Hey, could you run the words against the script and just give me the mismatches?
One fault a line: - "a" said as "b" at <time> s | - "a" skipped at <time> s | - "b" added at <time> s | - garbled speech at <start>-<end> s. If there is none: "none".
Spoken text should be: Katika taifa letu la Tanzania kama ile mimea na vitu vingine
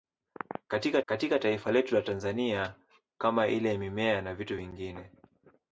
- "katika" added at 1.0 s